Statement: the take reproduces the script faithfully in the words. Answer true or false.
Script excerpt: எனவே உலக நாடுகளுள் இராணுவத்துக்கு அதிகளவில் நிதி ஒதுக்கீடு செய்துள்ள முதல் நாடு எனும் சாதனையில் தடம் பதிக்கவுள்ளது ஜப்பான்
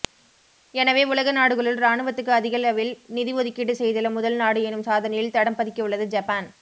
true